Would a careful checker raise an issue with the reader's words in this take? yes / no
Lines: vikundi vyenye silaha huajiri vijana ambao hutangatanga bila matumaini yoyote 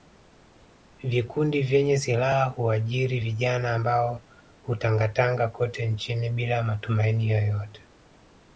yes